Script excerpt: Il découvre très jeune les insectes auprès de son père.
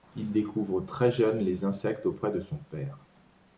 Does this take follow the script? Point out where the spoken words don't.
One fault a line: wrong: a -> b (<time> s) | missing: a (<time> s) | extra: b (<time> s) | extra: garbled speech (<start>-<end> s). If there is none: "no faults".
no faults